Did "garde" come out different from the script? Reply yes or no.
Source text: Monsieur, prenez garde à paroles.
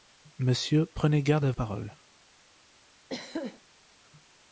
no